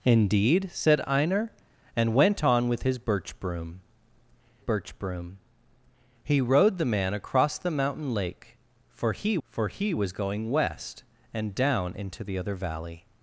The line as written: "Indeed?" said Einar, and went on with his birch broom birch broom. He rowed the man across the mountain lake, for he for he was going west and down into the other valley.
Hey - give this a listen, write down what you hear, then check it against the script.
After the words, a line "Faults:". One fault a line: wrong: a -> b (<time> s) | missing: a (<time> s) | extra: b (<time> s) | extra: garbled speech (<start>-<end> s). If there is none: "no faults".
"Indeed?" said Einar, and went on with his birch broom birch broom. He rowed the man across the mountain lake, for he for he was going west and down into the other valley.
Faults:
no faults